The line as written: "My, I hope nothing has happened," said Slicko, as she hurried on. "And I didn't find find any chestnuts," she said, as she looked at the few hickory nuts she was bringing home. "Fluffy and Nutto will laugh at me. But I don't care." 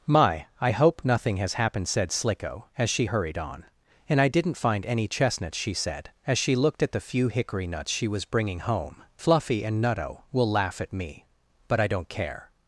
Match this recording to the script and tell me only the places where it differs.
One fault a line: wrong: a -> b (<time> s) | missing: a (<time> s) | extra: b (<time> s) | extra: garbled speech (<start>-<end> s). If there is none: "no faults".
missing: find (4.8 s)